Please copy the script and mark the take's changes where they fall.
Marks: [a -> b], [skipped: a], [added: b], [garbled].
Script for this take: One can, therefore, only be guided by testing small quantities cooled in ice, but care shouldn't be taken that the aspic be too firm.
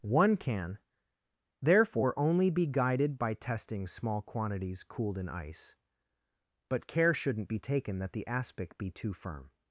One can, therefore, only be guided by testing small quantities cooled in ice, but care shouldn't be taken that the aspic be too firm.